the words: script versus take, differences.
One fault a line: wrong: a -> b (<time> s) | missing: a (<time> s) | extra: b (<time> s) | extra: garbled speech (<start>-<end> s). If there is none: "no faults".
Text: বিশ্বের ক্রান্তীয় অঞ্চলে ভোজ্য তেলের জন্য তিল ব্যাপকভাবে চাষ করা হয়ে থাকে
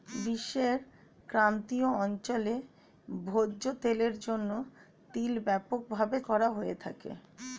missing: চাষ (6.2 s)